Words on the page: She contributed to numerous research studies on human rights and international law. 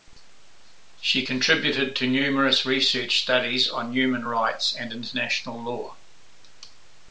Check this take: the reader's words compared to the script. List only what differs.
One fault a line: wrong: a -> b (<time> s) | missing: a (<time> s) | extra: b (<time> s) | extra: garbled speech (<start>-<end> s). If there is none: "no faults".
no faults